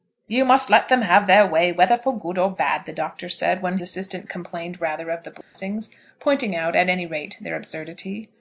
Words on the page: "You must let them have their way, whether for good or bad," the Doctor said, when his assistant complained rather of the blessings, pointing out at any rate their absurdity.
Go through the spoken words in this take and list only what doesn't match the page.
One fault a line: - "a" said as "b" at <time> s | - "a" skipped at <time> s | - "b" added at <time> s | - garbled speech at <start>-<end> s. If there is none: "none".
- "his" skipped at 3.8 s